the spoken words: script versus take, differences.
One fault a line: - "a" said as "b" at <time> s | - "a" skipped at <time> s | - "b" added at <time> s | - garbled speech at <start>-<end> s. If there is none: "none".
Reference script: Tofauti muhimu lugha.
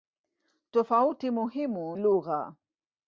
none